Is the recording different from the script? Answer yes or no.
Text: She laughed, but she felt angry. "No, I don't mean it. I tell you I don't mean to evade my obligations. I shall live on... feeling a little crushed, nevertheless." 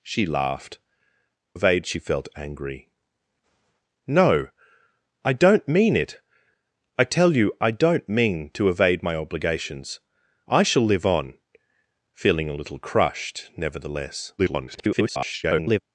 yes